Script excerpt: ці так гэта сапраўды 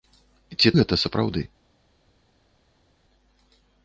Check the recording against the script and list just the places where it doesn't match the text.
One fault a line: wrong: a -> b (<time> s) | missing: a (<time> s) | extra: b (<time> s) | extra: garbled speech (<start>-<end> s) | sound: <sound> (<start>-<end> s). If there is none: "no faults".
missing: так (0.7 s)